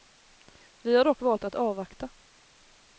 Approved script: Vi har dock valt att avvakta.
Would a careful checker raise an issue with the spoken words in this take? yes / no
no